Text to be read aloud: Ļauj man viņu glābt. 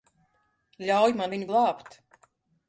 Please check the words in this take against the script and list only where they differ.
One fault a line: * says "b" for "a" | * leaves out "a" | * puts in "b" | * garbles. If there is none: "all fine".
all fine